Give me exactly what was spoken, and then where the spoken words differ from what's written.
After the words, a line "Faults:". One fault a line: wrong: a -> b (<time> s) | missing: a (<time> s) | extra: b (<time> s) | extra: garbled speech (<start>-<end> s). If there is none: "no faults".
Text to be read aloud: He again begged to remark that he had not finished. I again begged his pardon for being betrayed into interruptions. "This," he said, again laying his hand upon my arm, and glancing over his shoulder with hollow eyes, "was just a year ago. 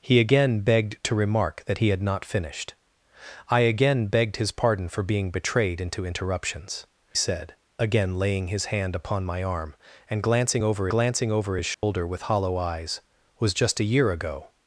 He again begged to remark that he had not finished. I again begged his pardon for being betrayed into interruptions. "Said, again laying his hand upon my arm, and glancing over glancing over his shoulder with hollow eyes, "was just a year ago.
Faults:
missing: This he (6.9 s)
extra: glancing over (10.9 s)